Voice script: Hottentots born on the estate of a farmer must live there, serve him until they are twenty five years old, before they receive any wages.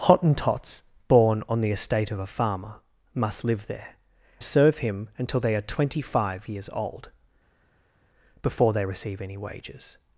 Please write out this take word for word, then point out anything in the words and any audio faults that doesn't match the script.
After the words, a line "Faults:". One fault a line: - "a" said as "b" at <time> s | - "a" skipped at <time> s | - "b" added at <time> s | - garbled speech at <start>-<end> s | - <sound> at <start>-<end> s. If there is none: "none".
Hottentots born on the estate of a farmer must live there, serve him until they are twenty five years old, before they receive any wages.
Faults:
none